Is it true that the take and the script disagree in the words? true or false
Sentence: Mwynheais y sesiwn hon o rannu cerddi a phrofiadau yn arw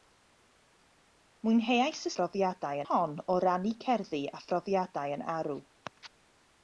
true